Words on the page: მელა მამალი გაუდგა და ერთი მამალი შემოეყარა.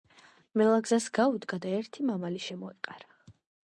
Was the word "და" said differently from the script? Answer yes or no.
no